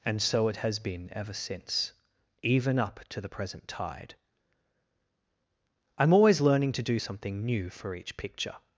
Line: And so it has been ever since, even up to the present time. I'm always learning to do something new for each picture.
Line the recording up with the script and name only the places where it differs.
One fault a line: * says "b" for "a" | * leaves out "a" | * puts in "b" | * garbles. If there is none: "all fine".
* says "tide" for "time"